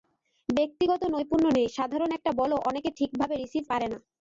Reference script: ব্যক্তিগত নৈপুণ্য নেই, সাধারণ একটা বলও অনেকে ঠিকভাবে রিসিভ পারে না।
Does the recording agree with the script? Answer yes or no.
yes